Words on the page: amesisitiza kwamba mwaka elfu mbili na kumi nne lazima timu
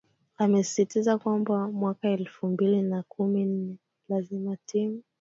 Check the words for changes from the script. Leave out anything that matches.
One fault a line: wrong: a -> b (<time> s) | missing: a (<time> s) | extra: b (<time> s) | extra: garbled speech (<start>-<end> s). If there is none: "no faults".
no faults